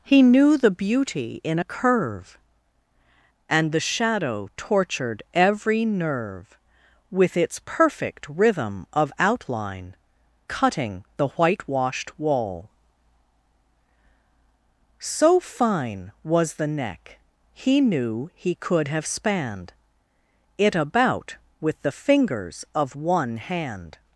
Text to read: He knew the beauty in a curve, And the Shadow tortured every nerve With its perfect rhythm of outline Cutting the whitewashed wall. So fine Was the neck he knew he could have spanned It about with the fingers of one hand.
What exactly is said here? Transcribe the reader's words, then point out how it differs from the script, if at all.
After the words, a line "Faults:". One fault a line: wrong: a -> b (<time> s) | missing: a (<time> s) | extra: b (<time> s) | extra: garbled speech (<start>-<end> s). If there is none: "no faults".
He knew the beauty in a curve, And the Shadow tortured every nerve With its perfect rhythm of outline Cutting the whitewashed wall. So fine Was the neck he knew he could have spanned It about with the fingers of one hand.
Faults:
no faults